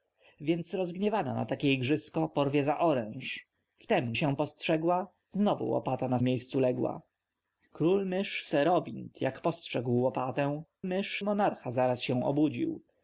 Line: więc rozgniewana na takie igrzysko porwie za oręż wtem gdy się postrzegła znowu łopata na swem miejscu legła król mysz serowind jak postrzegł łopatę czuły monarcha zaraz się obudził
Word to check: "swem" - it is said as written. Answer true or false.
false